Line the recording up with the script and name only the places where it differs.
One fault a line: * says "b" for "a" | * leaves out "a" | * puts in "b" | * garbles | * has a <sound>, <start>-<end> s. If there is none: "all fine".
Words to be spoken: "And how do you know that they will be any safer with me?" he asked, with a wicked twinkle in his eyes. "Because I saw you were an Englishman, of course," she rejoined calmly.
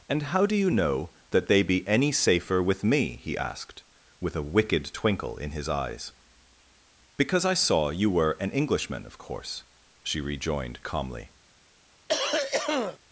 * leaves out "will"
* has a cough, 12.1-13.0 s